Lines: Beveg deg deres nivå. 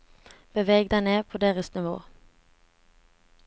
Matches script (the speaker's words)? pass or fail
fail